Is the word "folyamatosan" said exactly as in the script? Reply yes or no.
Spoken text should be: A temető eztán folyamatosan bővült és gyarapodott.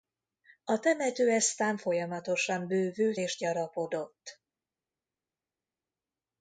yes